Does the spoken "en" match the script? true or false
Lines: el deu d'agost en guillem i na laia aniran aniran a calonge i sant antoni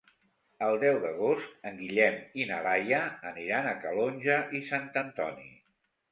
true